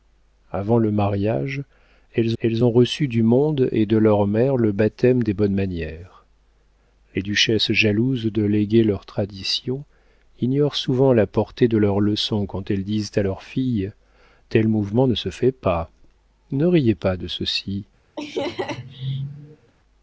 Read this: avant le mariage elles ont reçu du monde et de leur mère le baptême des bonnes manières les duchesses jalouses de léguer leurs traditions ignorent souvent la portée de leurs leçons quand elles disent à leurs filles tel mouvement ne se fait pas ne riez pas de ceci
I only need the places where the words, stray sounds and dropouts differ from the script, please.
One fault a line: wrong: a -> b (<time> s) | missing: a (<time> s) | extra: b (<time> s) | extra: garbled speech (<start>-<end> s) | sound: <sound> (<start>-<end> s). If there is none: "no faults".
extra: elles (2.4 s)
sound: laugh (18.2-19.7 s)